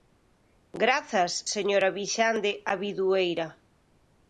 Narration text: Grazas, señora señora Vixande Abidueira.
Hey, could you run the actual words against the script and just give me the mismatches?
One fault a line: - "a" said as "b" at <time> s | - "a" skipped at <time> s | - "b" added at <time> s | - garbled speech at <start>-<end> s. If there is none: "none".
- "señora" skipped at 1.9 s